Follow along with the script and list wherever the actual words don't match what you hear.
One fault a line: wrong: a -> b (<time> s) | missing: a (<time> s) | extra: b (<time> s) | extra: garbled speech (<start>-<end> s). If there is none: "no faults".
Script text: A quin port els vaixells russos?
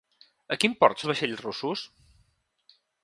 no faults